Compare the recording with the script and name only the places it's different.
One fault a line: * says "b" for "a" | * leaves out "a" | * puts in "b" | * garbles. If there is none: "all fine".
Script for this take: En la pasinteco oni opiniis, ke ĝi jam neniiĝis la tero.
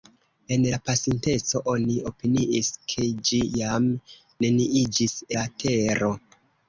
all fine